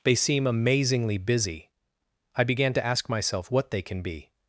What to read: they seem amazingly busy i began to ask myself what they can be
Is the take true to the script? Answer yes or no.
yes